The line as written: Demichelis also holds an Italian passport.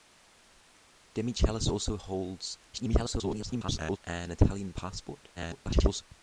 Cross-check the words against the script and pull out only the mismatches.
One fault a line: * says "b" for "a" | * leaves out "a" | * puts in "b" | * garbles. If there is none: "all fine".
* garbles
* garbles